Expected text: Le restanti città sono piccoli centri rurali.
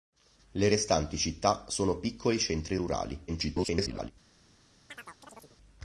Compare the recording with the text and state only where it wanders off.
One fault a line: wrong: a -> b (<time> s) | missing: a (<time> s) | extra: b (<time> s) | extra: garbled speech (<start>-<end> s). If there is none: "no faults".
extra: garbled speech (3.3-4.1 s)